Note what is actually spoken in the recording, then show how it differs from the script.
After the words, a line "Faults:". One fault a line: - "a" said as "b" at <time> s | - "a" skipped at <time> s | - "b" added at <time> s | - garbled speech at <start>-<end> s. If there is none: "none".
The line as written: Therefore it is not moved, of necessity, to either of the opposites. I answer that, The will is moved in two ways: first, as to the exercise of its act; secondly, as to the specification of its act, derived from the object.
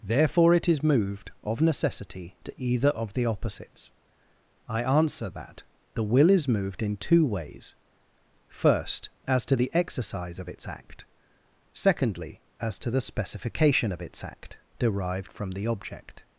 Therefore it is moved, of necessity, to either of the opposites. I answer that, The will is moved in two ways: first, as to the exercise of its act; secondly, as to the specification of its act, derived from the object.
Faults:
- "not" skipped at 0.8 s